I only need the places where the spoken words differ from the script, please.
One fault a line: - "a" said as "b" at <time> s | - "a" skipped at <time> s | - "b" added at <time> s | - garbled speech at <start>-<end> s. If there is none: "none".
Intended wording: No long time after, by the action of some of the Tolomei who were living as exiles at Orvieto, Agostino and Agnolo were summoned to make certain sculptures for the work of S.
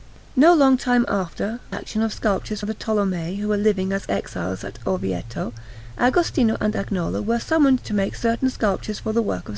- "by the" skipped at 1.6 s
- "some" said as "sculptures" at 2.1 s